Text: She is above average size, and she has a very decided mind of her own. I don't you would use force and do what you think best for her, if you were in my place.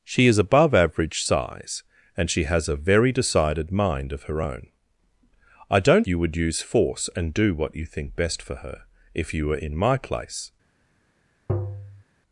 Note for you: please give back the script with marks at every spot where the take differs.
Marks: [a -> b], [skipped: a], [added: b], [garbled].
She is above average size, and she has a very decided mind of her own. I don't you would use force and do what you think best for her, if you were in my place.